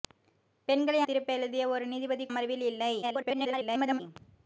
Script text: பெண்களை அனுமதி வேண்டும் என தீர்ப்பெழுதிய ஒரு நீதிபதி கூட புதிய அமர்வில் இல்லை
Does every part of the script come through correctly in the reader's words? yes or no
no